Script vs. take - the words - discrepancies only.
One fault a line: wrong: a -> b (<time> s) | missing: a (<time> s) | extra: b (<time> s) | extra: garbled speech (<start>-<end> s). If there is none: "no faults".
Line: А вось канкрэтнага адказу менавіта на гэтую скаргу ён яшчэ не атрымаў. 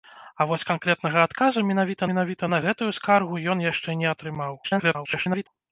extra: менавіта (2.1 s)
extra: garbled speech (4.6-5.5 s)